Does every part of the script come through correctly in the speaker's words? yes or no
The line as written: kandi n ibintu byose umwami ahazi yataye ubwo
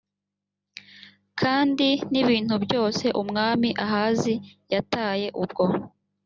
yes